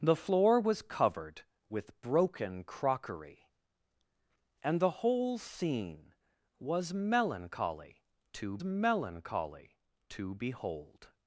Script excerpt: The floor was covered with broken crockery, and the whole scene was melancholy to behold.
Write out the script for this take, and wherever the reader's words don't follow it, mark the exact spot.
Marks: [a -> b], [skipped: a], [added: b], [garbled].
The floor was covered with broken crockery, and the whole scene was melancholy to [added: melancholy to] behold.